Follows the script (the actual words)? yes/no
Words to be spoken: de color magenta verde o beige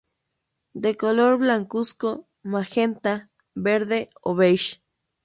no